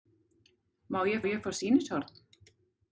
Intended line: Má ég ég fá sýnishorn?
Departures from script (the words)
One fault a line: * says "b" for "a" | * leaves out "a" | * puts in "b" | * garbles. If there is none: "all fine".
all fine